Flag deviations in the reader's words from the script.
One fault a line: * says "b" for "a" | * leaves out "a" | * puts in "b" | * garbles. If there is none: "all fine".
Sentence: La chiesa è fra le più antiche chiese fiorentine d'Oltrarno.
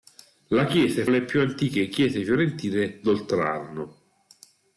* leaves out "fra"